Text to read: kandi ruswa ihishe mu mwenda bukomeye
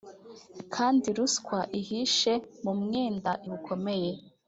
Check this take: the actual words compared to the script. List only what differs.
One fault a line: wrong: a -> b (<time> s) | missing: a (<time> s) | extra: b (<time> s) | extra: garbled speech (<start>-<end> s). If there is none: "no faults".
no faults